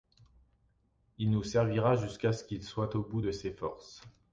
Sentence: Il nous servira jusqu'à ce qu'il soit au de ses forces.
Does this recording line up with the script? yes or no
no